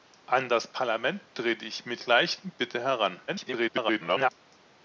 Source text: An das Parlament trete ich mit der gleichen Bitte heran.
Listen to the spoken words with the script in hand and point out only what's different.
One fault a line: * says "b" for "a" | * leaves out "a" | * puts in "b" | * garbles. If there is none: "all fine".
* leaves out "der"
* garbles